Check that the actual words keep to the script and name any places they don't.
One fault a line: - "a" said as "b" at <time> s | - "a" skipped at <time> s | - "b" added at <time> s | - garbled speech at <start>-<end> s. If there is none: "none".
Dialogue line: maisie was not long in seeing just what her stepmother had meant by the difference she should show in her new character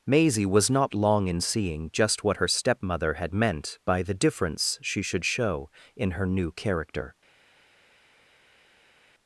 none